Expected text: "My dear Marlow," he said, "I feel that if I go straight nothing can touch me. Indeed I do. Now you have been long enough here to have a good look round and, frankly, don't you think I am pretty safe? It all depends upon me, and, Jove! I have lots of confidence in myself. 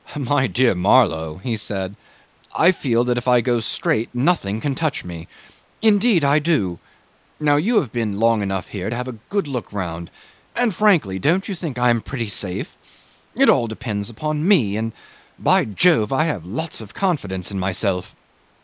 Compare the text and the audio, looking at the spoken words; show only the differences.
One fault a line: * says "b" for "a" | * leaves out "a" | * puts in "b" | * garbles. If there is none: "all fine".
* puts in "by"